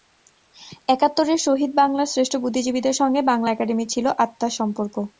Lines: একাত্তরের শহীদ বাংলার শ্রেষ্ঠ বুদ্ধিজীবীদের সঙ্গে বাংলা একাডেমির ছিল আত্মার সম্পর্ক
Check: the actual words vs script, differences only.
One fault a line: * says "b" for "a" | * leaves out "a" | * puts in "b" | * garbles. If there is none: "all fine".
all fine